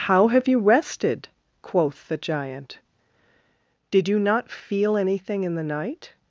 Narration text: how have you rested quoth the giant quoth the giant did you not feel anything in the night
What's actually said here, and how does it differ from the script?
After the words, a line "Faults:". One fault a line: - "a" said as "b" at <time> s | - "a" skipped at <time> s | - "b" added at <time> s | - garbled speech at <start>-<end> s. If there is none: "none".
how have you rested quoth the giant did you not feel anything in the night
Faults:
- "quoth the giant" skipped at 2.8 s